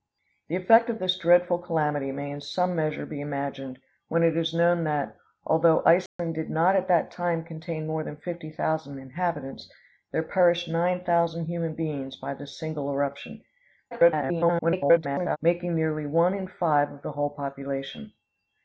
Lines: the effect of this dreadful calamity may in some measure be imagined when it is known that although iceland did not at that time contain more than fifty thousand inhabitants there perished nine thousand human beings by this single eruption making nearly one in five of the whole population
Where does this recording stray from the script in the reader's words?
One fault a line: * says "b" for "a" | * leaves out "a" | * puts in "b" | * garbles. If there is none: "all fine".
* garbles